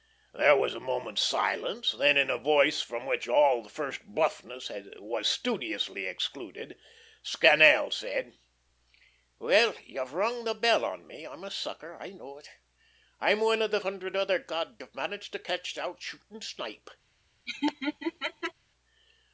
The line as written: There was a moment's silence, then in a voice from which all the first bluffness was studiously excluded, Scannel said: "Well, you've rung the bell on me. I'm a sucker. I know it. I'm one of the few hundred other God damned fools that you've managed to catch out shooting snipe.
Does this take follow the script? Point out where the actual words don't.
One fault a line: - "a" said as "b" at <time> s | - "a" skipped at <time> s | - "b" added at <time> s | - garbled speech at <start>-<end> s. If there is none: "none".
- "few" skipped at 13.8 s
- "damned fools that" skipped at 14.8 s